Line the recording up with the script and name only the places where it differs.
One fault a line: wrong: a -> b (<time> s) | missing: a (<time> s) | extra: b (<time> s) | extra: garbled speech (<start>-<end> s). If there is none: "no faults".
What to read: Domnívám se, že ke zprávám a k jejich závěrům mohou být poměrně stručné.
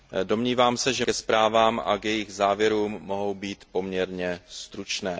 no faults